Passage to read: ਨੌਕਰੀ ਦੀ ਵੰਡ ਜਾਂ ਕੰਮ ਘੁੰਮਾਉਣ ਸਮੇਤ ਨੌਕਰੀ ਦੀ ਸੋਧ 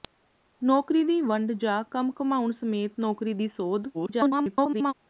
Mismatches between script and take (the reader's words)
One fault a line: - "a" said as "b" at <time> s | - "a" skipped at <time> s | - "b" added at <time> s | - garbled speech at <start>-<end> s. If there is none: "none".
- garbled speech at 3.9-4.9 s